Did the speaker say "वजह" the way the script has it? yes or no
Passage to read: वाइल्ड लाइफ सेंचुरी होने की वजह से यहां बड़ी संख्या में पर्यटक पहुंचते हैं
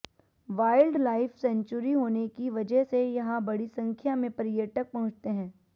yes